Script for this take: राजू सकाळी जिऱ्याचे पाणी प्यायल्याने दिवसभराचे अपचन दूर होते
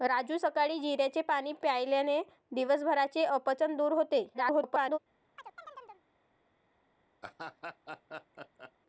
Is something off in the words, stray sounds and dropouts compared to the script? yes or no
yes